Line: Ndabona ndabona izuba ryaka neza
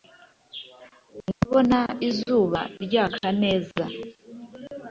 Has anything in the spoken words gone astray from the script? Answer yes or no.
yes